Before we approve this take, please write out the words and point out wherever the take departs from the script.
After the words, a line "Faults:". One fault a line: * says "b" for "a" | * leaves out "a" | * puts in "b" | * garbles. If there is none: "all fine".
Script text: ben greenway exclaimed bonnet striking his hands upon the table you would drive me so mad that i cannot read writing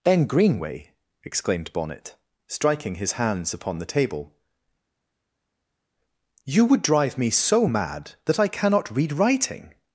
ben greenway exclaimed bonnet striking his hands upon the table you would drive me so mad that i cannot read writing
Faults:
all fine